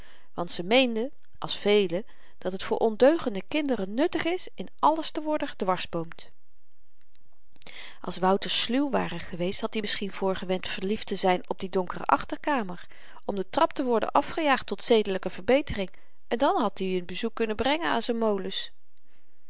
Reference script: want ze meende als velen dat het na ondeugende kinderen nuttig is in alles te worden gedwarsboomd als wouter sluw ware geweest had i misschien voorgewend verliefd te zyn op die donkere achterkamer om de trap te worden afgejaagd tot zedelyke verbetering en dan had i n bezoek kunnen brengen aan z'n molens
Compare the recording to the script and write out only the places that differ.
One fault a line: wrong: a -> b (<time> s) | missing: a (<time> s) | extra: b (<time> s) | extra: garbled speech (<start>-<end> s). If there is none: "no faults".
wrong: na -> voor (2.6 s)